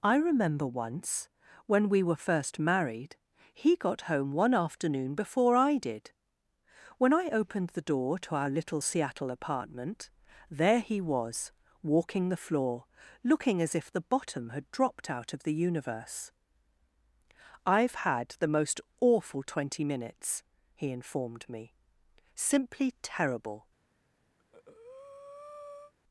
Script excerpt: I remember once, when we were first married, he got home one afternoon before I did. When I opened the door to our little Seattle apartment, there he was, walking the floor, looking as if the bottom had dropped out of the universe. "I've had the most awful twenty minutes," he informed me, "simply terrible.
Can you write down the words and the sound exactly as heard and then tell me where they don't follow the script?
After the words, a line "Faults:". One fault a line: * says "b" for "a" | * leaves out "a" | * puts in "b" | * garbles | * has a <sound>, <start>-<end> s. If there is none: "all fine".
I remember once, when we were first married, he got home one afternoon before I did. When I opened the door to our little Seattle apartment, there he was, walking the floor, looking as if the bottom had dropped out of the universe. "I've had the most awful twenty minutes," he informed me, "simply terrible.
Faults:
* has a breath, 24.4-25.9 s